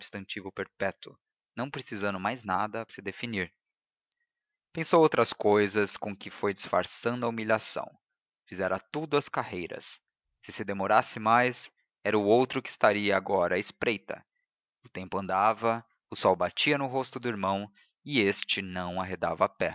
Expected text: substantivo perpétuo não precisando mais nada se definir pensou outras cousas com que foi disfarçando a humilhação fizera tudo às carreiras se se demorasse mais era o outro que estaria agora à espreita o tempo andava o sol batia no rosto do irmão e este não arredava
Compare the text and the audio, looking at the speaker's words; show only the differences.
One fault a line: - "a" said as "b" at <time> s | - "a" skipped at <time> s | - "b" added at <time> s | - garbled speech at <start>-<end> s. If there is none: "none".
none